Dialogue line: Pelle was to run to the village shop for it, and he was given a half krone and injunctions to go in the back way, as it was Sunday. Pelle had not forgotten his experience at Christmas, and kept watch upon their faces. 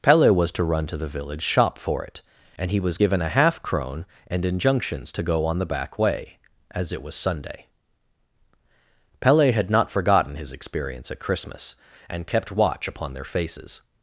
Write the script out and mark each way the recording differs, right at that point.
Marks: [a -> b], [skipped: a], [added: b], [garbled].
Pelle was to run to the village shop for it, and he was given a half krone and injunctions to go [in -> on] the back way, as it was Sunday. Pelle had not forgotten his experience at Christmas, and kept watch upon their faces.